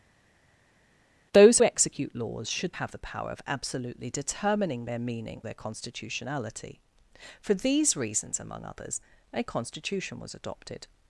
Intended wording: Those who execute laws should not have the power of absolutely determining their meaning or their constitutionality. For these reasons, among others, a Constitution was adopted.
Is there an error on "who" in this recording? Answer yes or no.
yes